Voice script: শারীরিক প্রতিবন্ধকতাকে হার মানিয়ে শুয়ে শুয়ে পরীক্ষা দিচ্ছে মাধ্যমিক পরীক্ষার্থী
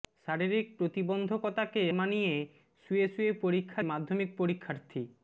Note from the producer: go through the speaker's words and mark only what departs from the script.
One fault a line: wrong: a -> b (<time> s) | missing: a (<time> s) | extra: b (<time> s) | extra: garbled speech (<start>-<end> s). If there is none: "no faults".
missing: হার (1.8 s)
missing: দিচ্ছে (3.8 s)